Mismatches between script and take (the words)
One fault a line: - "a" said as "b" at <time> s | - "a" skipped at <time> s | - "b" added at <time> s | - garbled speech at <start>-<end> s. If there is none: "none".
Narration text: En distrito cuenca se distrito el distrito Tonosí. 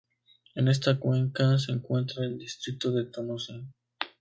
- "distrito" said as "esta" at 0.7 s
- "distrito" said as "encuentra" at 1.7 s
- "de" added at 2.9 s